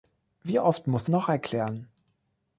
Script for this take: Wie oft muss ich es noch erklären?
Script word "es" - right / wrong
wrong